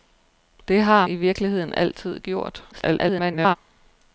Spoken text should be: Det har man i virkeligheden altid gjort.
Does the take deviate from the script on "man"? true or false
true